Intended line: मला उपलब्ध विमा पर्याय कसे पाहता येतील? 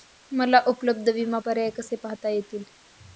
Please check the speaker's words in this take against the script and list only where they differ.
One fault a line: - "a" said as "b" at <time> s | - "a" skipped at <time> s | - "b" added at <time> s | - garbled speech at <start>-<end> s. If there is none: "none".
none